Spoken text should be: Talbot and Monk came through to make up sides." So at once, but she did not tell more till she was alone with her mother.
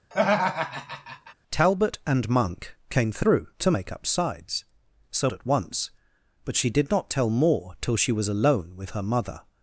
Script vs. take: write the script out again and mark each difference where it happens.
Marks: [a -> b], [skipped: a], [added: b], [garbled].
Talbot and Monk came through to make up sides." So at once, but she did not tell more till she was alone with her mother.